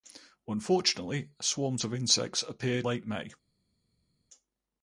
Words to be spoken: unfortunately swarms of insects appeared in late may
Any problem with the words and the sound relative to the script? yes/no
yes